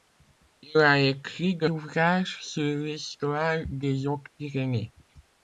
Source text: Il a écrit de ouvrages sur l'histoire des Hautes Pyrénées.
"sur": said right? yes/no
yes